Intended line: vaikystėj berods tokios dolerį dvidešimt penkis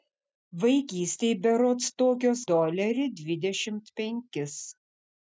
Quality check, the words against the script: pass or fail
pass